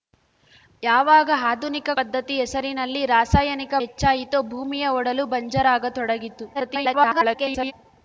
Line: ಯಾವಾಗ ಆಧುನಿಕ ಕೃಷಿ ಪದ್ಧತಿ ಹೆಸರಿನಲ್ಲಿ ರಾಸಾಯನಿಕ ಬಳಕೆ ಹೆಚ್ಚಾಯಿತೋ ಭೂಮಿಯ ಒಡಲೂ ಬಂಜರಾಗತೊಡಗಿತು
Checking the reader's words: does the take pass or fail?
fail